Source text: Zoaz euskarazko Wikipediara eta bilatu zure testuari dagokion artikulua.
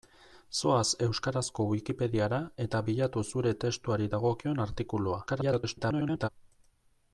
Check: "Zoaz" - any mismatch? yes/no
no